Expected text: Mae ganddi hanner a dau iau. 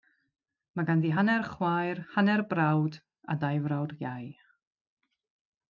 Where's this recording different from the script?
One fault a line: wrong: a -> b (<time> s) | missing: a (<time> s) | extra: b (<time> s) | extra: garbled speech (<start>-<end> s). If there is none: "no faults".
extra: chwaer hanner brawd (1.5 s)
extra: frawd (3.7 s)